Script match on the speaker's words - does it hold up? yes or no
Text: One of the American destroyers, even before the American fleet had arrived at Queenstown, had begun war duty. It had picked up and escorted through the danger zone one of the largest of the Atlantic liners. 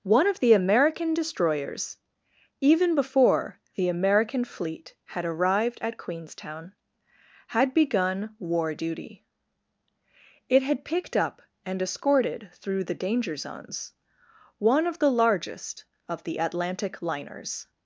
no